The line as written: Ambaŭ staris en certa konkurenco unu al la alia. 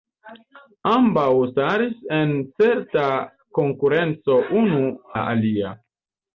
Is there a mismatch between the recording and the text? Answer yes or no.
yes